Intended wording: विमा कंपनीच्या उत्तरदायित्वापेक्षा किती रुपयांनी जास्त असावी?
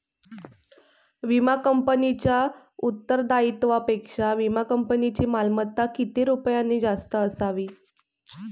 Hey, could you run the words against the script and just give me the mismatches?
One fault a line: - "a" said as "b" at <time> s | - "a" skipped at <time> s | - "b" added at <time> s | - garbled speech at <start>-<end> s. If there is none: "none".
- "विमा कंपनीची मालमत्ता" added at 4.3 s